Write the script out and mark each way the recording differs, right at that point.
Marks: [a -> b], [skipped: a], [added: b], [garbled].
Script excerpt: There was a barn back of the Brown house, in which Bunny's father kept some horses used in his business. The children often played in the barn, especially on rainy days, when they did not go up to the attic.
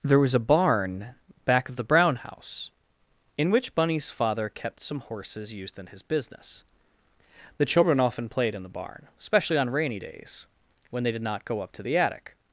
There was a barn back of the Brown house, in which Bunny's father kept some horses used in his business. The children often played in the barn, especially on rainy days, when they did not go up to the attic.